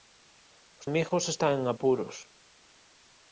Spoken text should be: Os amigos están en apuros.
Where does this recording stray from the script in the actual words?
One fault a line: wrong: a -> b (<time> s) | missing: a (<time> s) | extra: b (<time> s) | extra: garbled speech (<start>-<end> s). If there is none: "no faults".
no faults